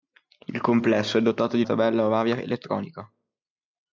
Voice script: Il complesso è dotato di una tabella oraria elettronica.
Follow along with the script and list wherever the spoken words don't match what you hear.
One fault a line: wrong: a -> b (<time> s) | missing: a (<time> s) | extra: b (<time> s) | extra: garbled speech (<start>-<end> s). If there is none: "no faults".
missing: una (1.6 s)